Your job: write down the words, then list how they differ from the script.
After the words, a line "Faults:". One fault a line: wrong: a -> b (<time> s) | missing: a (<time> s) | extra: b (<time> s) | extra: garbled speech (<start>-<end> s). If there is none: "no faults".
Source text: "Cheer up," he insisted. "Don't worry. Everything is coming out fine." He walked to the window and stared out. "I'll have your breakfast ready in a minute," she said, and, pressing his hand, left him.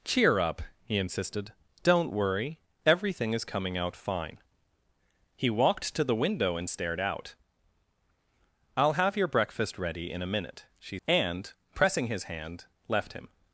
"Cheer up," he insisted. "Don't worry. Everything is coming out fine." He walked to the window and stared out. "I'll have your breakfast ready in a minute," she and, pressing his hand, left him.
Faults:
missing: said (11.0 s)